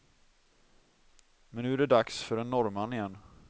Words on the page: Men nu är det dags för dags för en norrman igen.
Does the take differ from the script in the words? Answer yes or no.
yes